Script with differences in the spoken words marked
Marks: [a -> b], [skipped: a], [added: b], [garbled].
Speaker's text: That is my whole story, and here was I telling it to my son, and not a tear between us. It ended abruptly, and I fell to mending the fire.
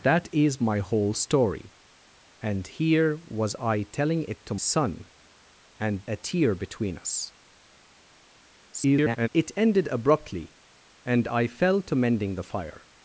That is my whole story, and here was I telling it to [skipped: my] son, and [skipped: not] a tear between us. [garbled] It ended abruptly, and I fell to mending the fire.